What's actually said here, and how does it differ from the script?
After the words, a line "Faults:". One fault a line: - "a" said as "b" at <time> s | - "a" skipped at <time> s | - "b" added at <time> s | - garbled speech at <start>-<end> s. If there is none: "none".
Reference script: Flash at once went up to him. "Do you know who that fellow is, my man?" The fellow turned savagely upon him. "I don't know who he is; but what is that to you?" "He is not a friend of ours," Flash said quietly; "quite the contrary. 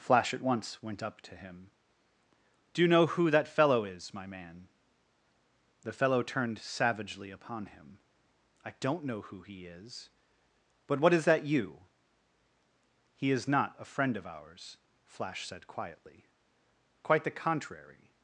Flash at once went up to him. "Do you know who that fellow is, my man?" The fellow turned savagely upon him. "I don't know who he is; but what is that you?" "He is not a friend of ours," Flash said quietly; "quite the contrary.
Faults:
- "to" skipped at 11.4 s